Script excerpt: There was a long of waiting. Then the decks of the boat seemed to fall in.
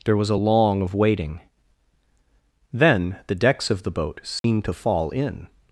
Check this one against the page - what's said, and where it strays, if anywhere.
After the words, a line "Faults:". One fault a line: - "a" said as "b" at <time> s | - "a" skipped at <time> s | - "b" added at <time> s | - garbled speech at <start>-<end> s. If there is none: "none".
There was a long of waiting. Then the decks of the boat seemed to fall in.
Faults:
none